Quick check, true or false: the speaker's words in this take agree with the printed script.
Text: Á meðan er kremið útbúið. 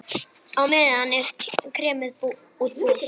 true